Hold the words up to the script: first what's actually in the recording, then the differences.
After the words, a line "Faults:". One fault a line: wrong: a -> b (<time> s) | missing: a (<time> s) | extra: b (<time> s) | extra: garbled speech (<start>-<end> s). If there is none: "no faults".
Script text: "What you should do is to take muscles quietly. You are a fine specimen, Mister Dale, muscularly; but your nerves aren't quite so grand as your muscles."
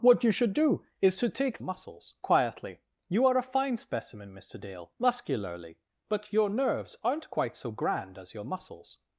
"What you should do is to take muscles quietly. You are a fine specimen, Mister Dale, muscularly; but your nerves aren't quite so grand as your muscles."
Faults:
no faults